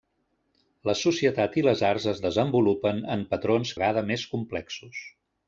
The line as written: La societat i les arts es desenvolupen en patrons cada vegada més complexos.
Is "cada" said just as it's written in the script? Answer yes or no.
no